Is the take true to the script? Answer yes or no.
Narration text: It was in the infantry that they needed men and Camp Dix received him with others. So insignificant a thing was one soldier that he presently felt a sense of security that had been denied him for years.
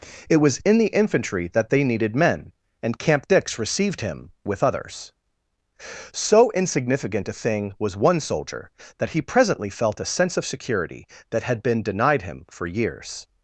yes